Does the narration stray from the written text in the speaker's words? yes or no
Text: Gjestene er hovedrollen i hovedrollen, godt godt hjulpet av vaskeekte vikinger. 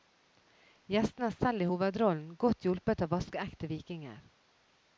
yes